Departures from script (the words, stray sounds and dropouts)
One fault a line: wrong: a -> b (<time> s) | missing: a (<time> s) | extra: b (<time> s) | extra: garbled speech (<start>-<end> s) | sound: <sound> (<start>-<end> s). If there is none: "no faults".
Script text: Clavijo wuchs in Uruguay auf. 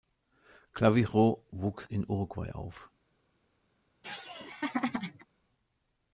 sound: laugh (4.0-5.3 s)